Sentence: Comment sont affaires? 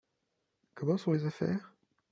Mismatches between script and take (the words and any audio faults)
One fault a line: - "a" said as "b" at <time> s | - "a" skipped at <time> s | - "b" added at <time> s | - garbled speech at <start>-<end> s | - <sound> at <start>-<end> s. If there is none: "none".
- "les" added at 1.1 s